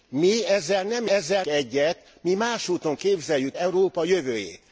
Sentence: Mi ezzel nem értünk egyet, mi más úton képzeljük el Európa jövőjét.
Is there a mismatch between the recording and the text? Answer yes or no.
yes